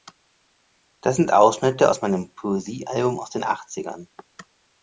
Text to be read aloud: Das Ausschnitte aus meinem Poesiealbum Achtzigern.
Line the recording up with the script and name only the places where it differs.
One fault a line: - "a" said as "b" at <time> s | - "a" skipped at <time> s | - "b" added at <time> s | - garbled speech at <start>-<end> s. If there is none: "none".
- "sind" added at 1.1 s
- "aus den" added at 3.2 s